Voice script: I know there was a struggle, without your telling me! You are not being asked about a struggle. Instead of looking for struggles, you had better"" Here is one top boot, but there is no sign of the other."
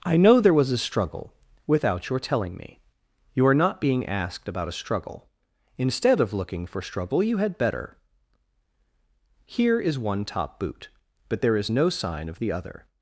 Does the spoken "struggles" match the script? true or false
false